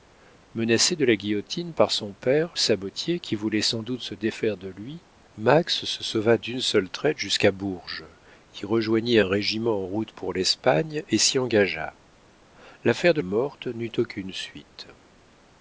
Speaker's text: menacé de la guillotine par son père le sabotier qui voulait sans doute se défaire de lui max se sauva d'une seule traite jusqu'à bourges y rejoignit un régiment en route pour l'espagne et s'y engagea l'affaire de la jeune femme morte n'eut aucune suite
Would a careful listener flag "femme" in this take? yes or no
yes